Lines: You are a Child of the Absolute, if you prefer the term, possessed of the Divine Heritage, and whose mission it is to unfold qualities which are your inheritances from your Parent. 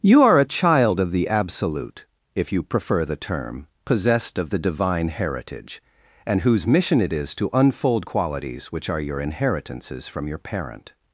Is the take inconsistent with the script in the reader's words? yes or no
no